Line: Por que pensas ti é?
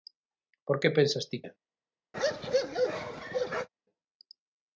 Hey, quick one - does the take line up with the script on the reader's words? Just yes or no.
yes